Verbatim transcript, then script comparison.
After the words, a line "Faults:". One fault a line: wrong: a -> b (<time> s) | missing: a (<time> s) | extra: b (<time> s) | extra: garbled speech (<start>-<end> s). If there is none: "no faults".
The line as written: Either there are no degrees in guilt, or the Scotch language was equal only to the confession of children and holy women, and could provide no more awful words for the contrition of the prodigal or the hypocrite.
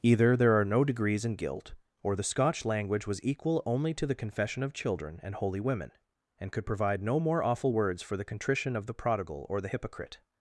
Either there are no degrees in guilt, or the Scotch language was equal only to the confession of children and holy women, and could provide no more awful words for the contrition of the prodigal or the hypocrite.
Faults:
no faults